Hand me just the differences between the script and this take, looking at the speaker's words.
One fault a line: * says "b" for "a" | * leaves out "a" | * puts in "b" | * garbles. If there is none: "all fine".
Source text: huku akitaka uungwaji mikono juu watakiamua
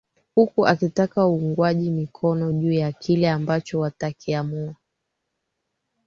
* puts in "ya kile ambacho"